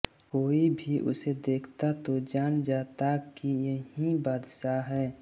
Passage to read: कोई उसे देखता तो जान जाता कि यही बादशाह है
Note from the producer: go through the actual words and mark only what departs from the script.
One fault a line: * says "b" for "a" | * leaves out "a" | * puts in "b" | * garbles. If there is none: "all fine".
* puts in "भी"